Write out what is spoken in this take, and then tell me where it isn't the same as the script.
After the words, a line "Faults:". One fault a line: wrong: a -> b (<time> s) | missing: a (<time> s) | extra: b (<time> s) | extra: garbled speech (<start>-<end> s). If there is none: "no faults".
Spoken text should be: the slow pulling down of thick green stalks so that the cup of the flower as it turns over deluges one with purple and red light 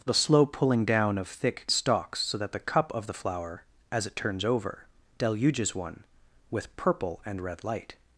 the slow pulling down of thick stalks so that the cup of the flower as it turns over deluges one with purple and red light
Faults:
missing: green (1.7 s)